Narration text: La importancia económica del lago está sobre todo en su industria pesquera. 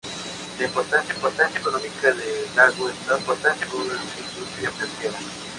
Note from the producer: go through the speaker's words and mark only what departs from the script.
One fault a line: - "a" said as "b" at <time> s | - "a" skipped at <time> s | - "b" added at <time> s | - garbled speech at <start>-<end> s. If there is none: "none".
- "importancia" added at 1.1 s
- "sobre" said as "importancia" at 3.2 s